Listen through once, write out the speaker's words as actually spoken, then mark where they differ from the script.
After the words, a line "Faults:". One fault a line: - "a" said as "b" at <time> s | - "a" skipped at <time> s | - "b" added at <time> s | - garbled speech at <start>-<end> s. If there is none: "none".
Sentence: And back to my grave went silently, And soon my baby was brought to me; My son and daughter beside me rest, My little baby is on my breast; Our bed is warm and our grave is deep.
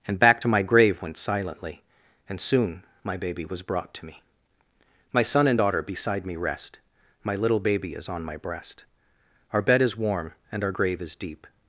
And back to my grave went silently, And soon my baby was brought to me; My son and daughter beside me rest, My little baby is on my breast; Our bed is warm and our grave is deep.
Faults:
none